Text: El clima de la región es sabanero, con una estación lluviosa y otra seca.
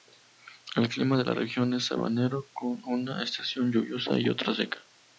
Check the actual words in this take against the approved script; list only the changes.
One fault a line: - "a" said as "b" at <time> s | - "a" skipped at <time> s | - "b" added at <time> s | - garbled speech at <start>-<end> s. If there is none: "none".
none